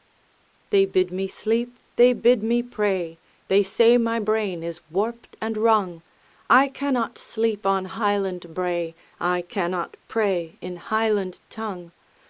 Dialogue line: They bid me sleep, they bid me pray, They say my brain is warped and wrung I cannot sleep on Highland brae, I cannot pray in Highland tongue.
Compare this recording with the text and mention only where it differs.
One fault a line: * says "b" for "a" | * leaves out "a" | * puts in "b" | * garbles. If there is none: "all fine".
all fine